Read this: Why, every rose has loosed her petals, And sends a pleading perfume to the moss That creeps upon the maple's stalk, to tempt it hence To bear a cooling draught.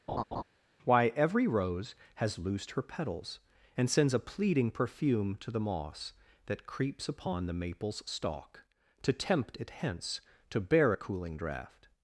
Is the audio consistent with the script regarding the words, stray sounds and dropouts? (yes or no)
no